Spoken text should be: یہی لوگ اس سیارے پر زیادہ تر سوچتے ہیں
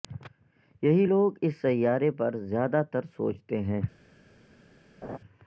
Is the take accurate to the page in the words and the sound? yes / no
no